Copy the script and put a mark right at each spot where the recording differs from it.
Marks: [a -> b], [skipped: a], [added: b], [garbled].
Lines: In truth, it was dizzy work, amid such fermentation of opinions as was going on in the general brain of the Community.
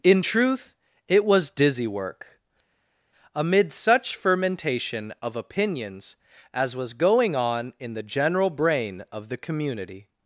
In truth, it was dizzy work, amid such fermentation of opinions as was going on in the general brain of the Community.